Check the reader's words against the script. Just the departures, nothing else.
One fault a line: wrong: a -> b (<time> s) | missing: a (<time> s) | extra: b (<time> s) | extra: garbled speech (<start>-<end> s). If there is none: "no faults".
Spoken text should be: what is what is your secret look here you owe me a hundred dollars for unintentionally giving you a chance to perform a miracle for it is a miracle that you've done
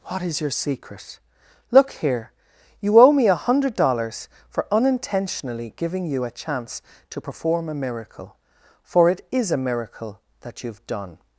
missing: what is (0.4 s)